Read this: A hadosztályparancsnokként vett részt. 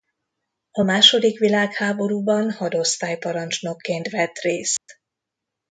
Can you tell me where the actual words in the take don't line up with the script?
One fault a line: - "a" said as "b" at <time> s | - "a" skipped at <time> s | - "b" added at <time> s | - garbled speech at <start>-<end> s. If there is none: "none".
- "második világháborúban" added at 0.8 s